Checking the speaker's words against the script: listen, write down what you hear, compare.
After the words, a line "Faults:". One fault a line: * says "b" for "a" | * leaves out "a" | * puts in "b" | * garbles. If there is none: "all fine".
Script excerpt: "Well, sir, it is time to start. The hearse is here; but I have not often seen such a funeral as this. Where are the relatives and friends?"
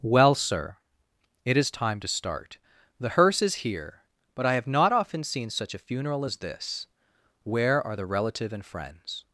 "Well, sir, it is time to start. The hearse is here; but I have not often seen such a funeral as this. Where are the relative and friends?"
Faults:
* says "relative" for "relatives"